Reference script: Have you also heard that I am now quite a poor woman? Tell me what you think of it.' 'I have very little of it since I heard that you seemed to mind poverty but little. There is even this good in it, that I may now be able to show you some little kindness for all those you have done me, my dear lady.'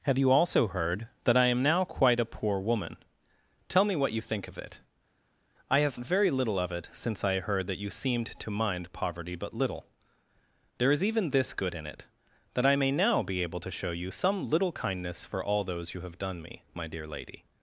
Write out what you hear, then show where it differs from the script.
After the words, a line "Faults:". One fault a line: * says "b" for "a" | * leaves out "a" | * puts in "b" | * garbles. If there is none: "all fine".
Have you also heard that I am now quite a poor woman? Tell me what you think of it.' 'I have very little of it since I heard that you seemed to mind poverty but little. There is even this good in it, that I may now be able to show you some little kindness for all those you have done me, my dear lady.'
Faults:
all fine